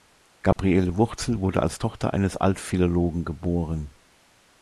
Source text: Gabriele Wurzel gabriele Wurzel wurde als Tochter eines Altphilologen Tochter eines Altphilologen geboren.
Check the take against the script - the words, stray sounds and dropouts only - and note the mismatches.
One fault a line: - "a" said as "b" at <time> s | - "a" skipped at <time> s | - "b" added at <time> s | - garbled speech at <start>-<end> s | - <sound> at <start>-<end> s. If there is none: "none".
- dropout at 0.5-0.6 s
- "gabriele Wurzel" skipped at 1.4 s
- "Tochter eines Altphilologen" skipped at 3.2 s